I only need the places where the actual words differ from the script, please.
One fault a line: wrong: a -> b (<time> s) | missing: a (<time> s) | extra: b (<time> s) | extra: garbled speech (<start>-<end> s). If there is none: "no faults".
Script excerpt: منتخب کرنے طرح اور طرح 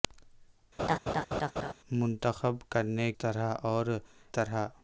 no faults